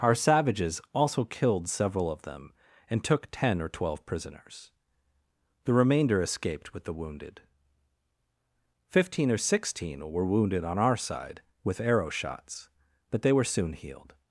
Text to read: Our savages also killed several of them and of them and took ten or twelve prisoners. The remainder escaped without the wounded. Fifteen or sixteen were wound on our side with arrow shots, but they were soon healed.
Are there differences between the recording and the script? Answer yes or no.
yes